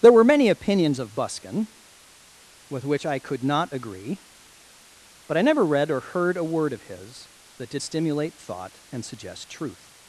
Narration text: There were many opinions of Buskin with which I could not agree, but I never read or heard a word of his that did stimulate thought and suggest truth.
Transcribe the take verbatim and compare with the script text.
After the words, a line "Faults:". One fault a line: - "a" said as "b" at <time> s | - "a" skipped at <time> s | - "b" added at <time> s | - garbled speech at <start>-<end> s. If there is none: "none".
There were many opinions of Buskin with which I could not agree, but I never read or heard a word of his that did stimulate thought and suggest truth.
Faults:
none